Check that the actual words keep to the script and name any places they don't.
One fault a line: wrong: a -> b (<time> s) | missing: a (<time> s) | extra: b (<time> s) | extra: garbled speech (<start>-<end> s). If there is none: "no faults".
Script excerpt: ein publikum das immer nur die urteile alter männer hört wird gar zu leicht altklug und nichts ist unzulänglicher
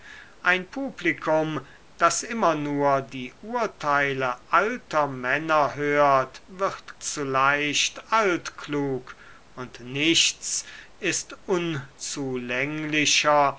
missing: gar (7.0 s)